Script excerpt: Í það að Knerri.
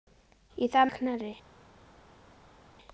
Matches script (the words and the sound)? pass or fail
pass